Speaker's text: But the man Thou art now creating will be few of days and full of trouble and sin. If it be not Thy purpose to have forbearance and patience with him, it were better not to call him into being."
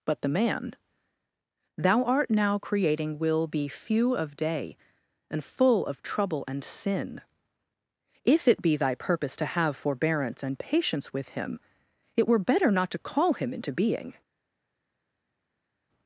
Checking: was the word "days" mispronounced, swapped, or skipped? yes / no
yes